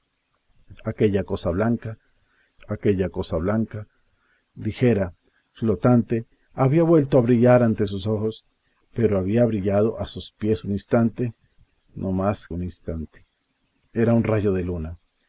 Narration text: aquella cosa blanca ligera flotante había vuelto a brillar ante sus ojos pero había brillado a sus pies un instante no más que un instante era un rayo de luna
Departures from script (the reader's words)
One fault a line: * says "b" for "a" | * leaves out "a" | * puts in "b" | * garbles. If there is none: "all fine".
* puts in "aquella cosa blanca"
* leaves out "que"